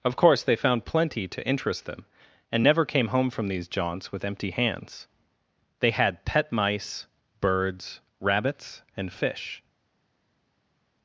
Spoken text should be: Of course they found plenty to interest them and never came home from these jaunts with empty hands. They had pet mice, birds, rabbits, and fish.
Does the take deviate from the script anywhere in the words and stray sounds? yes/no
no